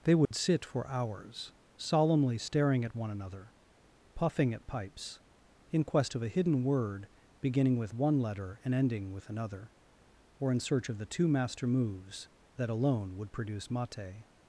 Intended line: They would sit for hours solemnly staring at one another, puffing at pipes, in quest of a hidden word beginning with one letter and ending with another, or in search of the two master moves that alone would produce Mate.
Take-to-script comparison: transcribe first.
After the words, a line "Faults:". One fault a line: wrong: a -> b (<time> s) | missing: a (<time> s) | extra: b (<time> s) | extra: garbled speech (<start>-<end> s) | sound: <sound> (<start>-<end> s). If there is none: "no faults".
They would sit for hours solemnly staring at one another, puffing at pipes, in quest of a hidden word beginning with one letter and ending with another, or in search of the two master moves that alone would produce Mate.
Faults:
sound: dropout (0.2-0.3 s)